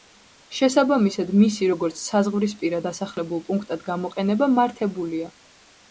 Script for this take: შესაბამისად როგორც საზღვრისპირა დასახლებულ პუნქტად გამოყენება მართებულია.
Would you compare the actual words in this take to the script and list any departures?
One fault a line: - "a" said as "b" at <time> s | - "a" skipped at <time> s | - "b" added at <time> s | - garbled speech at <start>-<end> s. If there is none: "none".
- "მისი" added at 1.4 s